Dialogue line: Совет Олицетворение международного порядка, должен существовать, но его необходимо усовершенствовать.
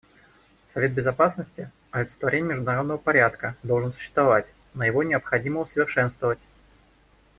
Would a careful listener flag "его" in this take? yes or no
no